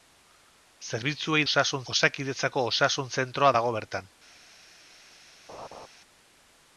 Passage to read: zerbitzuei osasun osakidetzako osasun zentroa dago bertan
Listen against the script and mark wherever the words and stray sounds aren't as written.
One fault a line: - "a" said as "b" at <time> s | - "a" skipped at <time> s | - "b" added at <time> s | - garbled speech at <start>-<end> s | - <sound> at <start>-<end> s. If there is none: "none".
- laugh at 5.5-5.9 s